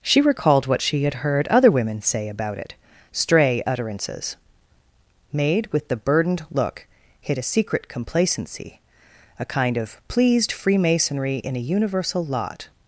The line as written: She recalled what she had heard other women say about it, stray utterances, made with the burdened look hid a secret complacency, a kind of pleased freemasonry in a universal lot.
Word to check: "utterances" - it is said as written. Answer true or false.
true